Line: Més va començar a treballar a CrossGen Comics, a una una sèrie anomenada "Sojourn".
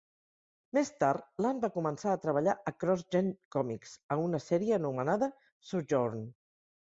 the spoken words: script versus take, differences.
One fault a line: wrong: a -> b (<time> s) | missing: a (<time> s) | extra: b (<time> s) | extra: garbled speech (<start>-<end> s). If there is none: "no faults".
extra: tard Land (1.0 s)
missing: una (4.4 s)